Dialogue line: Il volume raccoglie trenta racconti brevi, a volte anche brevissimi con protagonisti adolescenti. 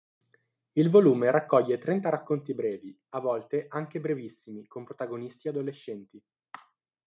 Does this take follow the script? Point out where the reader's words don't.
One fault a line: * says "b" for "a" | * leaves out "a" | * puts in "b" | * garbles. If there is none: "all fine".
all fine